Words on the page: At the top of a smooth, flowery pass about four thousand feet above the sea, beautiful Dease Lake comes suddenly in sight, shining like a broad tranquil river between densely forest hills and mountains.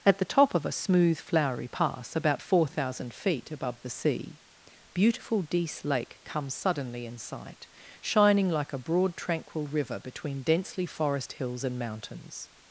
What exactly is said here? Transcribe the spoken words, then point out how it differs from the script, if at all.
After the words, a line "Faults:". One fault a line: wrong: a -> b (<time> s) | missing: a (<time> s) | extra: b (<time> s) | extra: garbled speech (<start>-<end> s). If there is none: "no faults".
At the top of a smooth, flowery pass about four thousand feet above the sea, beautiful Dease Lake comes suddenly in sight, shining like a broad tranquil river between densely forest hills and mountains.
Faults:
no faults